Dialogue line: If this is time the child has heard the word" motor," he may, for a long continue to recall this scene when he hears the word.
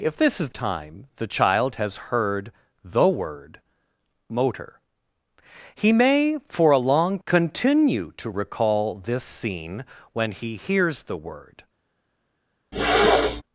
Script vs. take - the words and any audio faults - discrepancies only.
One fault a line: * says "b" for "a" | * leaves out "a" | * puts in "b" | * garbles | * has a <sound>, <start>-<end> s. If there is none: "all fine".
* has a throat clearing, 12.7-13.4 s